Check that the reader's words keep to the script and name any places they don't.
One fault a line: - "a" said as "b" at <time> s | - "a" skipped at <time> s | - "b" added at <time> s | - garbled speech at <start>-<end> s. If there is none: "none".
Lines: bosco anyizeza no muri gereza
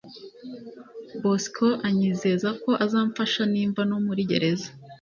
- "ko azamfasha nimva" added at 2.6 s